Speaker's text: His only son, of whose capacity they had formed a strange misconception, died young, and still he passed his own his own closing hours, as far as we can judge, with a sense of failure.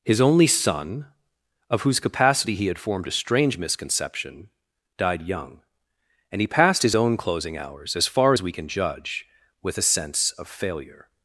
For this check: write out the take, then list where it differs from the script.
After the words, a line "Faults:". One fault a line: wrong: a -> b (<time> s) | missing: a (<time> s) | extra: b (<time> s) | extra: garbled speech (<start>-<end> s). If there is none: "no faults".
His only son, of whose capacity he had formed a strange misconception, died young, and he passed his own closing hours, as far as we can judge, with a sense of failure.
Faults:
wrong: they -> he (2.5 s)
missing: still (6.4 s)
missing: his own (7.2 s)